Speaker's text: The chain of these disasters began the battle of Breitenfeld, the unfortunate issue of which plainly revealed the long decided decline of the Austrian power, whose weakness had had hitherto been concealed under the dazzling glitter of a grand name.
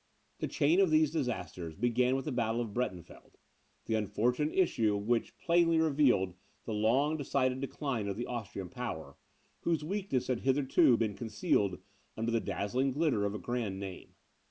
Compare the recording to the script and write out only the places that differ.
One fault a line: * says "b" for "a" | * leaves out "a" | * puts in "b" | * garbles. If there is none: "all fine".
* puts in "with"
* leaves out "had"